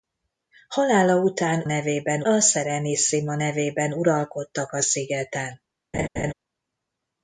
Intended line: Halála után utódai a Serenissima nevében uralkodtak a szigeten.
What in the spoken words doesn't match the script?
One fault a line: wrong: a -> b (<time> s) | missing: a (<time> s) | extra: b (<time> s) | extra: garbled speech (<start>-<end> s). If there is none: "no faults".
wrong: utódai -> nevében (1.6 s)